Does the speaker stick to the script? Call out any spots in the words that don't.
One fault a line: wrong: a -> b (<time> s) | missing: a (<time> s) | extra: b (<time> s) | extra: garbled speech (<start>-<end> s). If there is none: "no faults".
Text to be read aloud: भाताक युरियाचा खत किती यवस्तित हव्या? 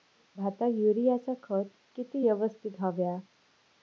no faults